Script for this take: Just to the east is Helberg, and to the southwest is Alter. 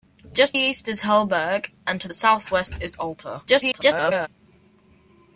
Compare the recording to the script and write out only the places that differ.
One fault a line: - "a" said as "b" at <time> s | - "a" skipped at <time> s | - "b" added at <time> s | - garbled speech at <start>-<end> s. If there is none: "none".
- "to the" skipped at 0.6 s
- "the" skipped at 2.1 s
- garbled speech at 3.5-4.3 s